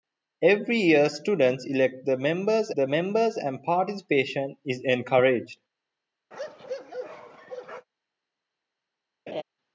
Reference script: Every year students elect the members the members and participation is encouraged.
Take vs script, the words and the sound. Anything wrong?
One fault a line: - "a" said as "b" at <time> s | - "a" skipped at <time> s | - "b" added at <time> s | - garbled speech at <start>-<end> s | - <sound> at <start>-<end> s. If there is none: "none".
- bark at 6.3-7.9 s
- laugh at 9.3-9.4 s